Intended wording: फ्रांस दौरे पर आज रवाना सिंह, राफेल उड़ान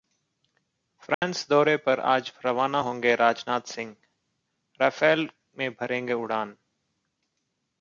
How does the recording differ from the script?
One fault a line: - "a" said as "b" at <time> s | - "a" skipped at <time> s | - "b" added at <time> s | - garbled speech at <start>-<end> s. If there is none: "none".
- "होंगे राजनाथ" added at 2.8 s
- "में भरेंगे" added at 5.6 s